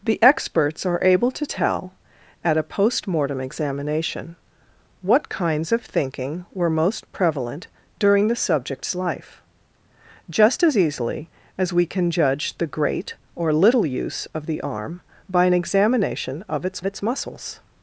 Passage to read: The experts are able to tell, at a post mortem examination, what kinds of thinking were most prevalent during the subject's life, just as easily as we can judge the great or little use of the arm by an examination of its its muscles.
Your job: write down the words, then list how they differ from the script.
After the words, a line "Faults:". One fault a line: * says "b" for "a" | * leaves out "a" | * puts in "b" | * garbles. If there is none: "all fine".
The experts are able to tell, at a post mortem examination, what kinds of thinking were most prevalent during the subject's life, just as easily as we can judge the great or little use of the arm by an examination of its its muscles.
Faults:
all fine